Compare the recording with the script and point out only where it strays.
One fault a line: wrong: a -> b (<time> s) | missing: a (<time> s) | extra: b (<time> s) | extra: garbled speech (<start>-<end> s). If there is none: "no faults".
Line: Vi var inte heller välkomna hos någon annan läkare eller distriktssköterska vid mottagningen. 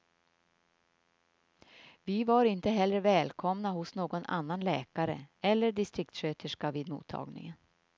no faults